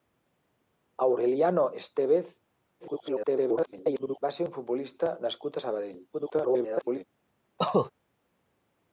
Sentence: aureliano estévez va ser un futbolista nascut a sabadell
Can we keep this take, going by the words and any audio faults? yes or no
no